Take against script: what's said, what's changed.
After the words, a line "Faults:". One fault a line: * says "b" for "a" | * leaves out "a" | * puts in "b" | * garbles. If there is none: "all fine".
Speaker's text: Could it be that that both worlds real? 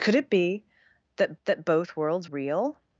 Could it be that that both worlds real?
Faults:
all fine